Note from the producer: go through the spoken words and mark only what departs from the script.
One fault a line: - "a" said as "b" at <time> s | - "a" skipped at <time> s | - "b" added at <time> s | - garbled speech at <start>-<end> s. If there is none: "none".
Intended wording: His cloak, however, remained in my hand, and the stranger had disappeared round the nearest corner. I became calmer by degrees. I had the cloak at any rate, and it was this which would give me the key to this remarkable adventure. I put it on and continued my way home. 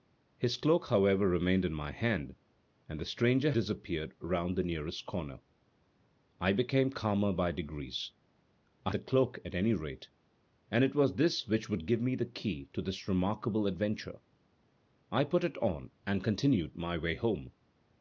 - "had" skipped at 3.5 s
- "had" skipped at 8.9 s